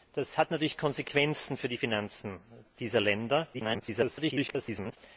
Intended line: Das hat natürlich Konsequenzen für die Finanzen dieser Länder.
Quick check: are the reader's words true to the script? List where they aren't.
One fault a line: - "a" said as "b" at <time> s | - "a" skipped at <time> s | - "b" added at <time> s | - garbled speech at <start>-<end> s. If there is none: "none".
- garbled speech at 3.5-5.0 s